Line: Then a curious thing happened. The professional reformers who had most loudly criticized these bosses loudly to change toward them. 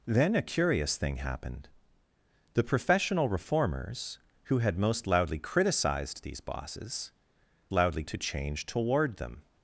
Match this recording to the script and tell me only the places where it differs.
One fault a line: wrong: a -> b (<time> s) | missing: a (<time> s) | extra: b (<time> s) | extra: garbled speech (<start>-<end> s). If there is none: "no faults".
no faults